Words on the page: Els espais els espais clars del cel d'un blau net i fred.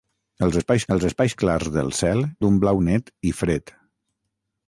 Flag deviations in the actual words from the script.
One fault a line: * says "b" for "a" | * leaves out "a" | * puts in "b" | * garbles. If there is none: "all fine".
all fine